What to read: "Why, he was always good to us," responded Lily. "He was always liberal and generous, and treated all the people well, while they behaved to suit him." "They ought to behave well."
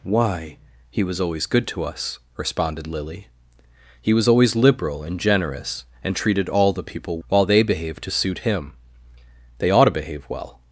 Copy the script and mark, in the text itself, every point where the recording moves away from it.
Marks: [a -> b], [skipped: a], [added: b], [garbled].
"Why, he was always good to us," responded Lily. "He was always liberal and generous, and treated all the people [skipped: well,] while they behaved to suit him." "They ought to behave well."